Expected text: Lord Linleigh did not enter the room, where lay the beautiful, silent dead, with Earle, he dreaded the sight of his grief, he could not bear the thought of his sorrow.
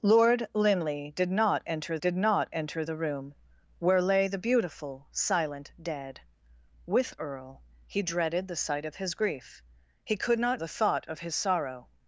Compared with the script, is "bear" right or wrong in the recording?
wrong